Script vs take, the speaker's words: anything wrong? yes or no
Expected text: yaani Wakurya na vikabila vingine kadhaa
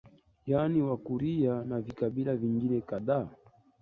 no